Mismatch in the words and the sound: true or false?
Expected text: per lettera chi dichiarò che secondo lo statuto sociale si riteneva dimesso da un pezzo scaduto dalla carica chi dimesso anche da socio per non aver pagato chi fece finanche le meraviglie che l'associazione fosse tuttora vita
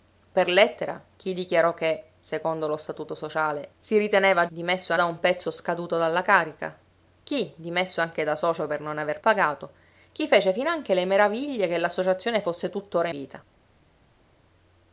false